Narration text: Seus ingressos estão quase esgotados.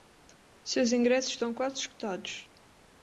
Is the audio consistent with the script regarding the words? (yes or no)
yes